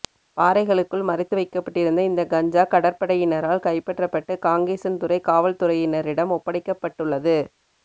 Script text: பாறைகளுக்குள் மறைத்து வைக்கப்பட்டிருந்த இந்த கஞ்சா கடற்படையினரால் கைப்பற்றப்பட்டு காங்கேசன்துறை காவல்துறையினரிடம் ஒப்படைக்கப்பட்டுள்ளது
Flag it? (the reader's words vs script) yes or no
no